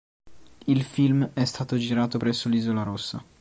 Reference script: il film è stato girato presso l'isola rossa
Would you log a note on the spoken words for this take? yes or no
no